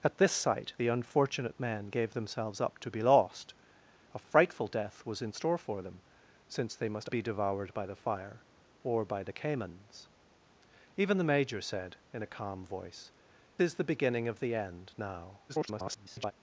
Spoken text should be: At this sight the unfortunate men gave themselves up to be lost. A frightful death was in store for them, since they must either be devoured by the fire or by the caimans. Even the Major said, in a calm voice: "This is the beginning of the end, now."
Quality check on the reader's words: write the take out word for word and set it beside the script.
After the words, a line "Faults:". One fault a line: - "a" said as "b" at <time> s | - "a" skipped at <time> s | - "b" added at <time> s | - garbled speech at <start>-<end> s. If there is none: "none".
At this sight the unfortunate men gave themselves up to be lost. A frightful death was in store for them, since they must be devoured by the fire or by the caimans. Even the Major said, in a calm voice: "Is the beginning of the end, now." [garbled]
Faults:
- "either" skipped at 7.1 s
- "This" skipped at 13.1 s
- garbled speech at 15.5-16.3 s